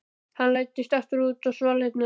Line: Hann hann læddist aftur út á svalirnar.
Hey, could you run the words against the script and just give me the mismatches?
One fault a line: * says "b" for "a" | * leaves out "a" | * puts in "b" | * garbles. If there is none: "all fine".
* leaves out "hann"